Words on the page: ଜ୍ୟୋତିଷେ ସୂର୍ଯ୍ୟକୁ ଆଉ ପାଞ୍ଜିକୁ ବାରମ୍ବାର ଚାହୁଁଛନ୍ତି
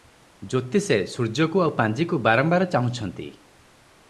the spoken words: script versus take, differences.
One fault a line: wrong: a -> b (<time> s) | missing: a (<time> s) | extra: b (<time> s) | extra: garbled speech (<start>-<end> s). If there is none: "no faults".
no faults